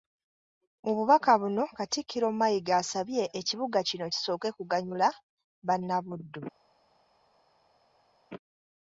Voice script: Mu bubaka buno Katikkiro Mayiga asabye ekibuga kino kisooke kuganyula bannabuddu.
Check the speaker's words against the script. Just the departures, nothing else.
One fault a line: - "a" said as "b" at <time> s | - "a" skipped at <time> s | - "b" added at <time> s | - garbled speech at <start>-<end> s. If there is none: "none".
none